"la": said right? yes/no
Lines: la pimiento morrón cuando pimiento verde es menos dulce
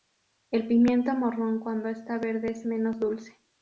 no